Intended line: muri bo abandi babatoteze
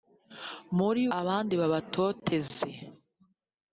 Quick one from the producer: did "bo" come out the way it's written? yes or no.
no